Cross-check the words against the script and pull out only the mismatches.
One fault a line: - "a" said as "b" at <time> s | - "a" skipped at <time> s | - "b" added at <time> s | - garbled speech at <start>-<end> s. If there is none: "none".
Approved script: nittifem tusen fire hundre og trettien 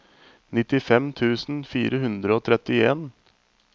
none